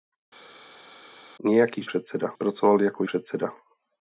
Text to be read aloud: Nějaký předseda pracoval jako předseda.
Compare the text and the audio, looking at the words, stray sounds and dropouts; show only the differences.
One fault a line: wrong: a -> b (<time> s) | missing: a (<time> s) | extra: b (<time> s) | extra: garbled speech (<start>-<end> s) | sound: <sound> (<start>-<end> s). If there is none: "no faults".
no faults